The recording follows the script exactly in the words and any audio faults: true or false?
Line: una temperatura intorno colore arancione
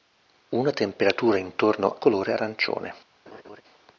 false